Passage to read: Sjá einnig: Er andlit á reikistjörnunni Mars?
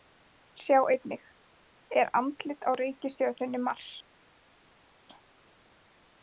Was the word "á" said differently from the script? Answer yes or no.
no